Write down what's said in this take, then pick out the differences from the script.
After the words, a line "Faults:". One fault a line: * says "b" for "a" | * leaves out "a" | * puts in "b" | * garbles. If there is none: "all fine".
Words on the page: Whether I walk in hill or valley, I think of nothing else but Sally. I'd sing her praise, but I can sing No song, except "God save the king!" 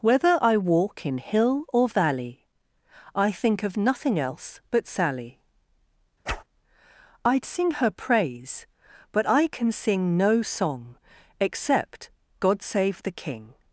Whether I walk in hill or valley, I think of nothing else but Sally. I'd sing her praise, but I can sing No song, except "God save the king!"
Faults:
all fine